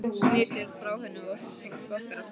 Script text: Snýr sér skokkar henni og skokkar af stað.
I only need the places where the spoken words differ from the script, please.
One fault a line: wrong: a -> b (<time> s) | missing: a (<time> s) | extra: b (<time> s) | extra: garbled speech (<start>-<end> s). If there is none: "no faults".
wrong: skokkar -> frá (0.8 s)